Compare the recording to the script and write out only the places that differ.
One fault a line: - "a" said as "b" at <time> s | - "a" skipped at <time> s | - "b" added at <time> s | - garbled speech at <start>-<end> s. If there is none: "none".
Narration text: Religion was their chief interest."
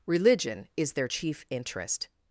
- "was" said as "is" at 0.8 s